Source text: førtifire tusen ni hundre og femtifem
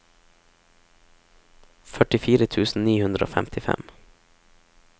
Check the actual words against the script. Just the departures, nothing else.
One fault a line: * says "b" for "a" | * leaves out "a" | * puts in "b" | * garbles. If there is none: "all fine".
all fine